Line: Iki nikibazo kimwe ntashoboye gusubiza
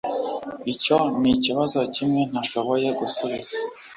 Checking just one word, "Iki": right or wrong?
wrong